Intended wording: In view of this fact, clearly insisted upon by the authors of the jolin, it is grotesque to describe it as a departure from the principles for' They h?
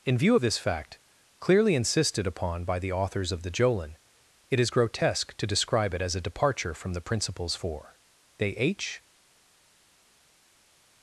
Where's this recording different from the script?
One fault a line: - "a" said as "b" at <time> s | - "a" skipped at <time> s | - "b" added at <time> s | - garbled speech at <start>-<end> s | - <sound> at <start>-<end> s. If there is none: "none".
none